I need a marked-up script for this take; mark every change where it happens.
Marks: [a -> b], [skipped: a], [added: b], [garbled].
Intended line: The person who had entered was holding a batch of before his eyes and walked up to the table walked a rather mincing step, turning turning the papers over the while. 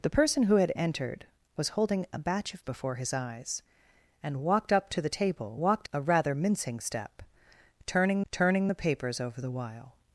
The person who had entered was holding a batch of before his eyes and walked up to the table walked a rather mincing step, turning turning the papers over the while.